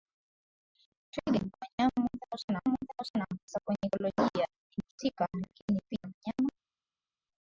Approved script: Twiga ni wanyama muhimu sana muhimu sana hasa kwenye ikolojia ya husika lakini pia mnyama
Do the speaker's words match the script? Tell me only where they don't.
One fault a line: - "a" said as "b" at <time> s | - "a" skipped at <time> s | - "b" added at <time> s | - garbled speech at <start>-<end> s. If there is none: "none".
none